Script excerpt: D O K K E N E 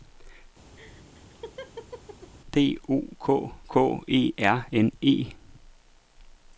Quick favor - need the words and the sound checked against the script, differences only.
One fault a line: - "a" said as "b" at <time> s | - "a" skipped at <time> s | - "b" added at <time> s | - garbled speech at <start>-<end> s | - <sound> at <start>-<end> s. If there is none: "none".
- laugh at 0.8-2.3 s
- "R" added at 4.4 s